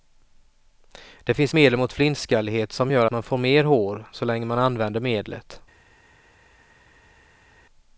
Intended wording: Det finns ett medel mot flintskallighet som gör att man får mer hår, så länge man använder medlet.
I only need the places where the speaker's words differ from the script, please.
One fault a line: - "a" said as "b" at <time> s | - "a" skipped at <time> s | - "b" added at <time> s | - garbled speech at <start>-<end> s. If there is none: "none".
- "ett" skipped at 1.5 s
- "att" skipped at 3.1 s